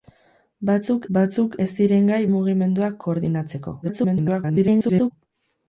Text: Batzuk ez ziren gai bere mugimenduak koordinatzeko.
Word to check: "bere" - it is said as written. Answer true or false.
false